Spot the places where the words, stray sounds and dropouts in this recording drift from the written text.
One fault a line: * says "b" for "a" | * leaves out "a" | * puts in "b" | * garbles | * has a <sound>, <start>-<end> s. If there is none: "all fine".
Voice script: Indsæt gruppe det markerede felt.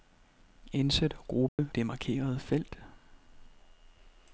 * has a dropout, 1.5-1.6 s